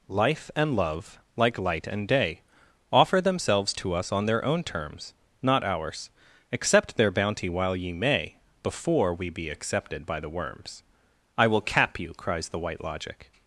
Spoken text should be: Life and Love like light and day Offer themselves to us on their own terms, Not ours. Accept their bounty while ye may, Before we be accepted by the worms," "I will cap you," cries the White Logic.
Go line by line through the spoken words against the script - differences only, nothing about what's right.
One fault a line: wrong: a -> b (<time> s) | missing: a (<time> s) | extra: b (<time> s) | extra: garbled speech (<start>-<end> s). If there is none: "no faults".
no faults